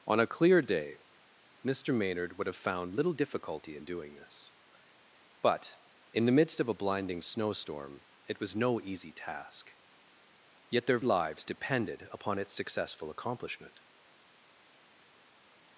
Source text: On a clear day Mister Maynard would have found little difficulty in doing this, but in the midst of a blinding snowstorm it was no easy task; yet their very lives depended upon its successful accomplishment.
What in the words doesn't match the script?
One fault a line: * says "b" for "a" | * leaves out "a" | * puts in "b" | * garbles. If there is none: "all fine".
* leaves out "very"